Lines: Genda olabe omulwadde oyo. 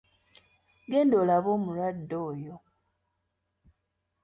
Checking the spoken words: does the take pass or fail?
pass